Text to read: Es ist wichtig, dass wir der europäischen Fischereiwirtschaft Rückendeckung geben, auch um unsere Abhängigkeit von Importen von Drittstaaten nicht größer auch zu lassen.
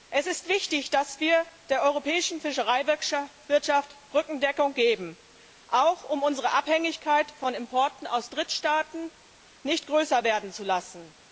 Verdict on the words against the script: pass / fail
fail